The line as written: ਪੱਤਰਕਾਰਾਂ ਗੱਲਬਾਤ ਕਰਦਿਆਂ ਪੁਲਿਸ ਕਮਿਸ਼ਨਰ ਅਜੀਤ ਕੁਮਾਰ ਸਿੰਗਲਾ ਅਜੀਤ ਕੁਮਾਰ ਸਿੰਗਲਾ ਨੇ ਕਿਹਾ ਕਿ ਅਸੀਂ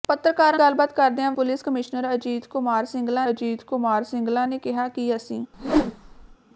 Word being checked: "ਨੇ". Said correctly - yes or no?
yes